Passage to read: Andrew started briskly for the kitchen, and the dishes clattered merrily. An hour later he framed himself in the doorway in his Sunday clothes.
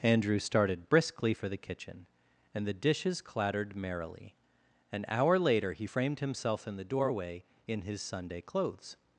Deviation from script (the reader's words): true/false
false